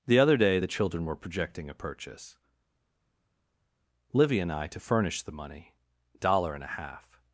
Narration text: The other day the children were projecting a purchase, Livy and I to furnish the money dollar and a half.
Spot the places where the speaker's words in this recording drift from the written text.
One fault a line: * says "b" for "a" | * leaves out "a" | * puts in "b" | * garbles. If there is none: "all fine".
all fine